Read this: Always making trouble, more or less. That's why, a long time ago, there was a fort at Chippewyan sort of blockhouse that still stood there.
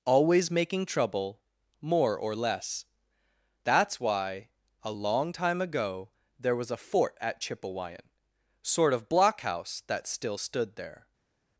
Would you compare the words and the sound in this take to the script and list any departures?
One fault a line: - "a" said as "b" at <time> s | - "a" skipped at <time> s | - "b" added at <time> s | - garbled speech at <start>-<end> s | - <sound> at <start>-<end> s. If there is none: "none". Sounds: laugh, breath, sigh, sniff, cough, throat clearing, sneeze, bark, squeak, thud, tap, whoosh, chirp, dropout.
none